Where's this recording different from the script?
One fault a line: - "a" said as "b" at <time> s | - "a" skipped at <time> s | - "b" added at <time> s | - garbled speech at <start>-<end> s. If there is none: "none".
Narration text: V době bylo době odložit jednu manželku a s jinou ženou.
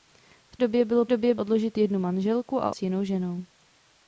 none